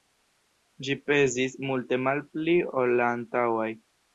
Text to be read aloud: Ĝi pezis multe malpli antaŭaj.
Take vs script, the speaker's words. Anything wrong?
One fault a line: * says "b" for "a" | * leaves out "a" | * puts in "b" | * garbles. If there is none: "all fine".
* puts in "ol la"